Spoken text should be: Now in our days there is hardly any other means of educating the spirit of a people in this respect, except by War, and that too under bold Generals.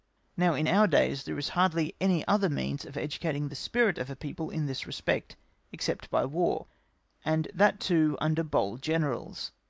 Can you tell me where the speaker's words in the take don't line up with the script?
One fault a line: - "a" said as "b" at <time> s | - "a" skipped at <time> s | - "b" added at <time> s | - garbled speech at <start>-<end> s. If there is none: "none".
none